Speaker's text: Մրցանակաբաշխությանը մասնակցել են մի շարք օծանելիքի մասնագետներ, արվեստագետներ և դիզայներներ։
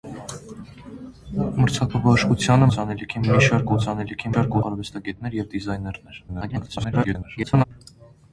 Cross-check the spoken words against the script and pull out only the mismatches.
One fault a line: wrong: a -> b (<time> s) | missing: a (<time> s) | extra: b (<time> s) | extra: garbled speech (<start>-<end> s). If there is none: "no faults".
wrong: մասնակցել -> օծանելիքի (2.7 s)
wrong: մասնագետներ -> շարք (4.3 s)
extra: garbled speech (6.3-7.6 s)